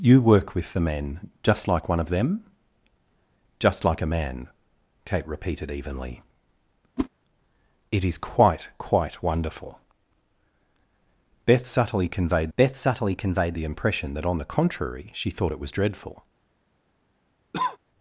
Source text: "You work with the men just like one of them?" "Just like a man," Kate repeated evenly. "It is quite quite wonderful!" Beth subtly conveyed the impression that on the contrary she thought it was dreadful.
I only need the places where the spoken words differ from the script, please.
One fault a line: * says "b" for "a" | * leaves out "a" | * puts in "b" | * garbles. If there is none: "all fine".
* puts in "beth subtly conveyed"